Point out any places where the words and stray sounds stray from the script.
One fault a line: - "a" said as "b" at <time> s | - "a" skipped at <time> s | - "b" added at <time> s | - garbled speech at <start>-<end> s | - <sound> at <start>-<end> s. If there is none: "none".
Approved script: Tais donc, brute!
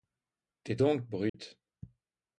- dropout at 1.3-1.3 s